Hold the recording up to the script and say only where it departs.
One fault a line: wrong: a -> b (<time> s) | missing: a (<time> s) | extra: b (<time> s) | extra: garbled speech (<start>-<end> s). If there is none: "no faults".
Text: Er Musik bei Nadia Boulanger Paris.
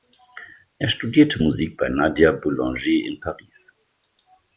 extra: studierte (0.9 s)
extra: in (2.9 s)